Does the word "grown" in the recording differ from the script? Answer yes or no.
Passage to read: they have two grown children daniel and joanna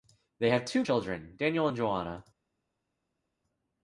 yes